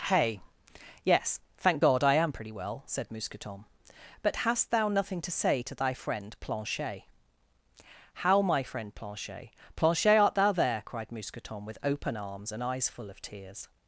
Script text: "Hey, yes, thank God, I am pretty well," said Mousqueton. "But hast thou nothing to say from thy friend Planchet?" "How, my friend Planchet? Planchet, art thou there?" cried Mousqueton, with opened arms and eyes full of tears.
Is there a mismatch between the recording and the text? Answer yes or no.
yes